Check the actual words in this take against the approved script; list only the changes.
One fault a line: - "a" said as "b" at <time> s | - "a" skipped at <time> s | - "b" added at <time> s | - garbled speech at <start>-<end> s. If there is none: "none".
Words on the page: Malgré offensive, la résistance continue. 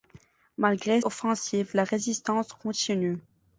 none